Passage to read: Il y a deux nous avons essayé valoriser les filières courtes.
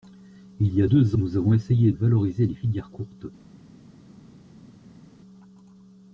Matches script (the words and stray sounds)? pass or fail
pass